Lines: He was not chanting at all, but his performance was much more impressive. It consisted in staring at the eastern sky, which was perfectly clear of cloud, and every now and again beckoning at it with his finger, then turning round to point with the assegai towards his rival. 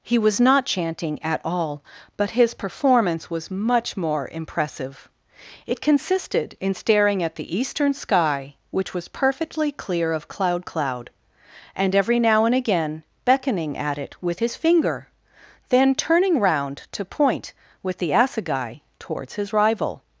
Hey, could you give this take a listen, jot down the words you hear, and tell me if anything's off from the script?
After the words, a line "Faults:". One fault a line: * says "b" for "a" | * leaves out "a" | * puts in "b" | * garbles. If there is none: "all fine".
He was not chanting at all, but his performance was much more impressive. It consisted in staring at the eastern sky, which was perfectly clear of cloud cloud, and every now and again beckoning at it with his finger, then turning round to point with the assegai towards his rival.
Faults:
* puts in "cloud"